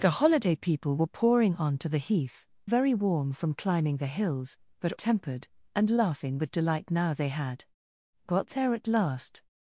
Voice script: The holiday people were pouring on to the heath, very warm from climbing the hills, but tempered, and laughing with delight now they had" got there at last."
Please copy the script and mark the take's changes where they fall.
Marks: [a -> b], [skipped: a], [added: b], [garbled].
The holiday people were pouring on to the heath, very warm from climbing the hills, but tempered, and laughing with delight now they had" got there at last."